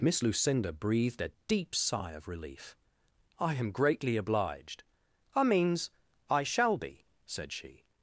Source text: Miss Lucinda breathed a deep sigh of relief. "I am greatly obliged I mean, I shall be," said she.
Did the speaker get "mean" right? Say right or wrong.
wrong